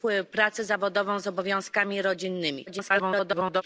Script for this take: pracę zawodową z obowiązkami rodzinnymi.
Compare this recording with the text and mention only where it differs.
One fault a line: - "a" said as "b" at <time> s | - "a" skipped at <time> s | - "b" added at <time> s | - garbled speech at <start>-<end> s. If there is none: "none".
- garbled speech at 2.7-3.6 s